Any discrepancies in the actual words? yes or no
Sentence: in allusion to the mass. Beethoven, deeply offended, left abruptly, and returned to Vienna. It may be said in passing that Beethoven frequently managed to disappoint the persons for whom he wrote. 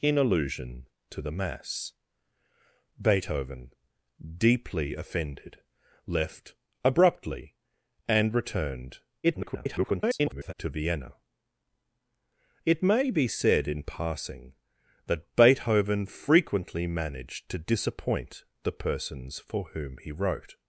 yes